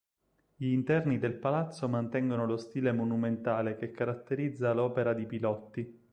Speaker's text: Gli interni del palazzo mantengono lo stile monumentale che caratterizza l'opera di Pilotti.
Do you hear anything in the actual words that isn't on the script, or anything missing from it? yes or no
no